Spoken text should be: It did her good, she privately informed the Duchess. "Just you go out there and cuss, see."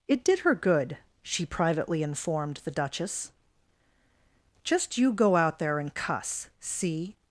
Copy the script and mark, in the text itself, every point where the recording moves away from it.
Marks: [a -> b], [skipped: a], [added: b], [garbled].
It did her good, she privately informed the Duchess. "Just you go out there and cuss, see."